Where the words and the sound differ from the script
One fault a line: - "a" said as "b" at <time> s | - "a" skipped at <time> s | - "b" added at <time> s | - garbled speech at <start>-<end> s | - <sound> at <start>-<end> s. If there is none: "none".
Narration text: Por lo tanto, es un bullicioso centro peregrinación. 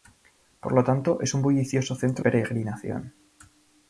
none